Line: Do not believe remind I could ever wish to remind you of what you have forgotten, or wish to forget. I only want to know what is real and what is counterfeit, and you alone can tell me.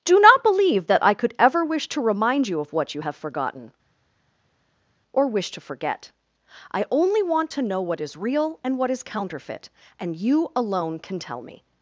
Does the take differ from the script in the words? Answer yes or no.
yes